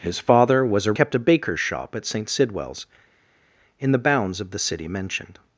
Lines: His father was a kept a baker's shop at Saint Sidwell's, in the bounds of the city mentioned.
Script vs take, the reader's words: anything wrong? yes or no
no